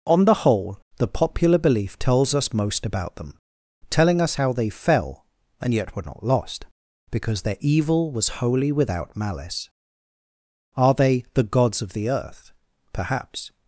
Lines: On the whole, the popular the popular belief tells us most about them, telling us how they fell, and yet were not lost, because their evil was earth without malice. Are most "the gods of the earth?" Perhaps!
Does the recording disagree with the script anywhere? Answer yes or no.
yes